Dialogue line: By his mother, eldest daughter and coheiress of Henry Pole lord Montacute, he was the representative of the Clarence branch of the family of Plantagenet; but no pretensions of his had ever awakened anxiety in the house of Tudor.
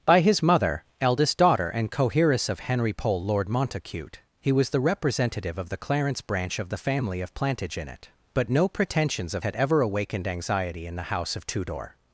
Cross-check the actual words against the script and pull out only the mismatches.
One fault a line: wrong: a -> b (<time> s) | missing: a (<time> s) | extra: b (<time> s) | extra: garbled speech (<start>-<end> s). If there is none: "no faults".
missing: his (9.4 s)